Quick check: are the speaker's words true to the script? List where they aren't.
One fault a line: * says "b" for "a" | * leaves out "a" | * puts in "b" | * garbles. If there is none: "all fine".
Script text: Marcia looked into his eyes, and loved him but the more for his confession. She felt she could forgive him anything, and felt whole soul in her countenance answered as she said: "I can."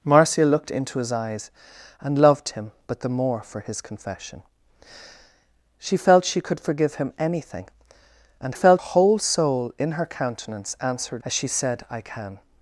all fine